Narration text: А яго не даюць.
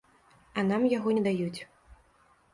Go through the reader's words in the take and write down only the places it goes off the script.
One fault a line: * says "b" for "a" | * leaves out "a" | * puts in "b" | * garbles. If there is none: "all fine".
* puts in "нам"